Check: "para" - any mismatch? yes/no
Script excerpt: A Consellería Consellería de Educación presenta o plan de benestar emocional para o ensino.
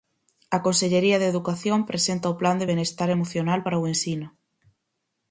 no